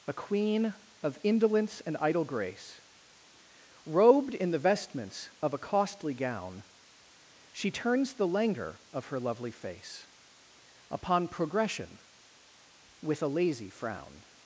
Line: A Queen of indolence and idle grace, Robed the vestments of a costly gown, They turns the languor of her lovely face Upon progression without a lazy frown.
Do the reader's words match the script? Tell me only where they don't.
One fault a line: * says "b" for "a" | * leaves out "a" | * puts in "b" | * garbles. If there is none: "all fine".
* puts in "in"
* says "She" for "They"
* says "with" for "without"